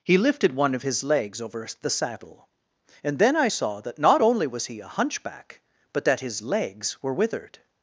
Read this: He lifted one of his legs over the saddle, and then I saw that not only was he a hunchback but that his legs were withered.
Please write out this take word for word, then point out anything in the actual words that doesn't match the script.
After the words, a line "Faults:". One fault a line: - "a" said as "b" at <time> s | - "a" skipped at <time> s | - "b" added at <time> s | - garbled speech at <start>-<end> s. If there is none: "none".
He lifted one of his legs over the saddle, and then I saw that not only was he a hunchback but that his legs were withered.
Faults:
none